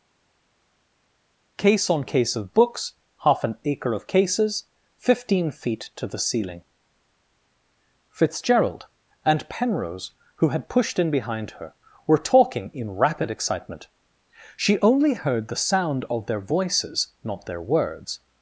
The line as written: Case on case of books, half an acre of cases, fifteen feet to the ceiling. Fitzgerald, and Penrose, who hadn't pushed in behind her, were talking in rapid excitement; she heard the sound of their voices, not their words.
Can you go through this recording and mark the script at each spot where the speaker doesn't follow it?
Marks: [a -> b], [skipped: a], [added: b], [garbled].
Case on case of books, half an acre of cases, fifteen feet to the ceiling. Fitzgerald, and Penrose, who [hadn't -> had] pushed in behind her, were talking in rapid excitement; she [added: only] heard the sound of their voices, not their words.